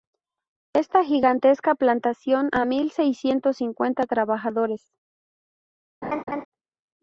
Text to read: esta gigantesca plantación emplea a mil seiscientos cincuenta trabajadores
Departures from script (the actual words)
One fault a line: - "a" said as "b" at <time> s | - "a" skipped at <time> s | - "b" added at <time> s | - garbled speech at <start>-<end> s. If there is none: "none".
- "emplea" skipped at 2.5 s